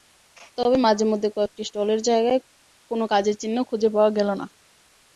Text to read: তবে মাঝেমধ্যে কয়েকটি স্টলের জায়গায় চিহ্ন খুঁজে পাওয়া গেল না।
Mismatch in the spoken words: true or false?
true